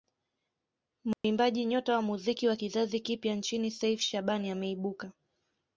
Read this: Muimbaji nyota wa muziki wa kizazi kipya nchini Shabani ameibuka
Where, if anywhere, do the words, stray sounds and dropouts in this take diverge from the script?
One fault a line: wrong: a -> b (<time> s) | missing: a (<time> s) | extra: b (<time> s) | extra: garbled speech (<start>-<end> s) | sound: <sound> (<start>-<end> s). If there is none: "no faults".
sound: dropout (1.1-1.2 s)
extra: Seif (3.7 s)